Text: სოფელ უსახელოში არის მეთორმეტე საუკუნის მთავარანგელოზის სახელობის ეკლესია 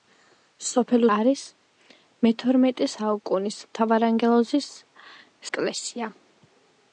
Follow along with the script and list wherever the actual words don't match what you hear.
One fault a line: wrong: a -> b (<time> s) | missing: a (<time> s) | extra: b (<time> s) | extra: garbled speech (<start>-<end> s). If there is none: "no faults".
missing: უსახელოში (1.0 s)
missing: სახელობის (4.7 s)